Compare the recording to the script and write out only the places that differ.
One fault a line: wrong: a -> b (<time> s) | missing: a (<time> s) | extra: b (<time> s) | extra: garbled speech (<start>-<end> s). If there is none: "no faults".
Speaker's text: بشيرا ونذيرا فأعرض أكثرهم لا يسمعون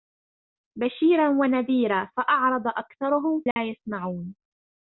no faults